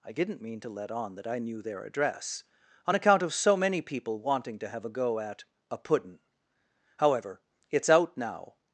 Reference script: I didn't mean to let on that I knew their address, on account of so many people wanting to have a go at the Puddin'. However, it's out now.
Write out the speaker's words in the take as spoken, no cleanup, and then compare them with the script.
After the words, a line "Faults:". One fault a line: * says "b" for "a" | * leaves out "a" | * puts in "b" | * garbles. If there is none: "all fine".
I didn't mean to let on that I knew their address, on account of so many people wanting to have a go at a Puddin'. However, it's out now.
Faults:
* says "a" for "the"